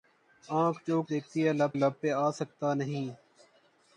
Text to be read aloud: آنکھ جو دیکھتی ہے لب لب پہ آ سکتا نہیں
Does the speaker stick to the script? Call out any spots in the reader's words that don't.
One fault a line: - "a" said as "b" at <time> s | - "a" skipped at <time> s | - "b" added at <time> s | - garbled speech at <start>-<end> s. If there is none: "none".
none